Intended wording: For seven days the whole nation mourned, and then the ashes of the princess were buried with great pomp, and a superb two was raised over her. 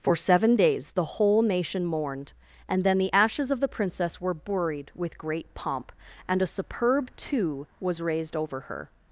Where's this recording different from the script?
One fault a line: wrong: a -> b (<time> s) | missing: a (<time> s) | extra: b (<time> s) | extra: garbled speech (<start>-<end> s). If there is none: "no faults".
no faults